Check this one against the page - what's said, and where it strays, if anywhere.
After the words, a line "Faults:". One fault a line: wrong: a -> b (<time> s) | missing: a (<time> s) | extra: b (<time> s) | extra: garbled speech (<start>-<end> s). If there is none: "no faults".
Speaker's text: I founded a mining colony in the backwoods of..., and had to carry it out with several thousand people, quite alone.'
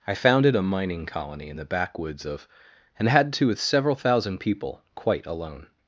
I founded a mining colony in the backwoods of..., and had to with several thousand people, quite alone.'
Faults:
missing: carry it out (3.5 s)